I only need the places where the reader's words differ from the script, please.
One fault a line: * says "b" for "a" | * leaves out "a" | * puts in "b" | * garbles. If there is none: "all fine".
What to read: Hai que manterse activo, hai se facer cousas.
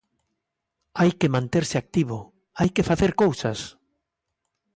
* says "que" for "se"